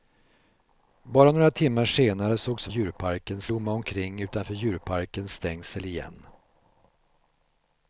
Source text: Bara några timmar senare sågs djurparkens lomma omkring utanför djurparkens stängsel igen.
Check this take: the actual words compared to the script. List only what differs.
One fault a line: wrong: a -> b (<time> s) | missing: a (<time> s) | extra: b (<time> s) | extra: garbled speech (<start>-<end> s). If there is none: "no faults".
no faults